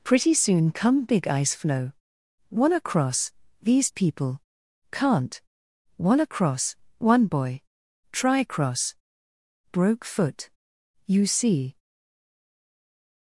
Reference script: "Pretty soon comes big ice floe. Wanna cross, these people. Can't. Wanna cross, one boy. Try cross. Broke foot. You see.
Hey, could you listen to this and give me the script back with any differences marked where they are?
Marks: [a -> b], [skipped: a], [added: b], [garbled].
"Pretty soon [comes -> come] big ice floe. Wanna cross, these people. Can't. Wanna cross, one boy. Try cross. Broke foot. You see.